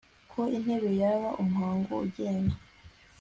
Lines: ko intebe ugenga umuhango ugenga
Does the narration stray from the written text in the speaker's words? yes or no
yes